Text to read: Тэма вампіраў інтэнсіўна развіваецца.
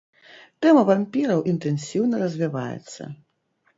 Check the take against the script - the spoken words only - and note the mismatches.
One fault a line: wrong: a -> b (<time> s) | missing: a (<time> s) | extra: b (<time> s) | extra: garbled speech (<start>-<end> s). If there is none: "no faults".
no faults